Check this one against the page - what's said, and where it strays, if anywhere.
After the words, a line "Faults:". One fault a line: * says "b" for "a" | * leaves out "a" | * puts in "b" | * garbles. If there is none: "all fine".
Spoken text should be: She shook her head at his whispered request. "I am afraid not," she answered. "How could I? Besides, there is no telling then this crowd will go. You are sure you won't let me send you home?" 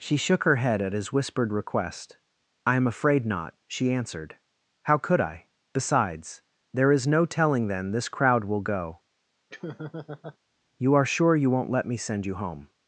She shook her head at his whispered request. "I am afraid not," she answered. "How could I? Besides, there is no telling then this crowd will go. You are sure you won't let me send you home?"
Faults:
all fine